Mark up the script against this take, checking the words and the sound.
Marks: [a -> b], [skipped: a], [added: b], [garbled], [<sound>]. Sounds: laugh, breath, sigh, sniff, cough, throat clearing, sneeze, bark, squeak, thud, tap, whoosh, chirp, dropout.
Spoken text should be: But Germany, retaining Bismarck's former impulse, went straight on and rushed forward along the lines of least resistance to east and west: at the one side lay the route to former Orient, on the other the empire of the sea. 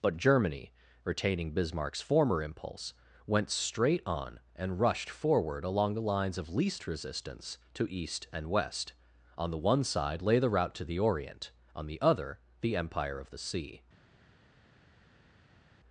But Germany, retaining Bismarck's former impulse, went straight on and rushed forward along the lines of least resistance to east and west: [at -> on] the one side lay the route to [former -> the] Orient, on the other the empire of the sea.